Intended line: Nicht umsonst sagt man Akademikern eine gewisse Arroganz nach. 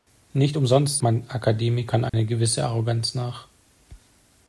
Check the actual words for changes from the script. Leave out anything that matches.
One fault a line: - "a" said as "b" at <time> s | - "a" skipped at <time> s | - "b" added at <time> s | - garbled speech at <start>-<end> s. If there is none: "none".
- "sagt" skipped at 1.0 s